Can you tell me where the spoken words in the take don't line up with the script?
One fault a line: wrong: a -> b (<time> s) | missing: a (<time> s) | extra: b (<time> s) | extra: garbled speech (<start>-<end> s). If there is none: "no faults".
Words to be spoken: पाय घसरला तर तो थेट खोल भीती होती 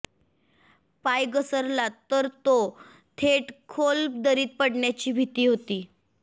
extra: दरीत पडण्याची (4.2 s)